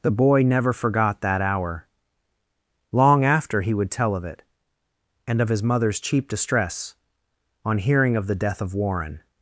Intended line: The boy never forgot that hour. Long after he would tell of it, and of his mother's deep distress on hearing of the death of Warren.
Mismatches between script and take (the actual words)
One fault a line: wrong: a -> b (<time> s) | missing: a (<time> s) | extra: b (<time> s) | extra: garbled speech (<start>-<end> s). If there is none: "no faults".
wrong: deep -> cheap (6.0 s)